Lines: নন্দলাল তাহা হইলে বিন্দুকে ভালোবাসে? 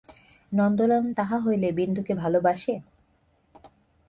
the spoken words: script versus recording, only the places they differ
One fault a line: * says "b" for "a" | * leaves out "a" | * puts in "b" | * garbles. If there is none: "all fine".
all fine